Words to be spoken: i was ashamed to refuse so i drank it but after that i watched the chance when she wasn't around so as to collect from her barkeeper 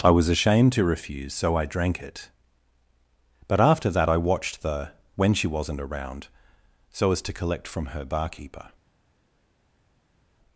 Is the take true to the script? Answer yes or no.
no